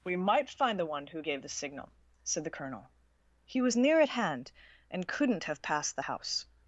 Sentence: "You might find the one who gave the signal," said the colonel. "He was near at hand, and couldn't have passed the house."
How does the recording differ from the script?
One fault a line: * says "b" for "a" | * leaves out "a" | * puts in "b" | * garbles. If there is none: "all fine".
* says "We" for "You"